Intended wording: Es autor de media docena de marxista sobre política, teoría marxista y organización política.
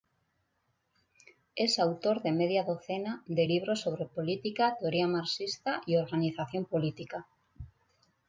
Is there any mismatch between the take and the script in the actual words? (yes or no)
yes